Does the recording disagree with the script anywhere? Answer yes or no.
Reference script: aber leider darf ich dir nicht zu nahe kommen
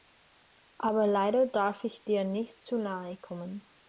no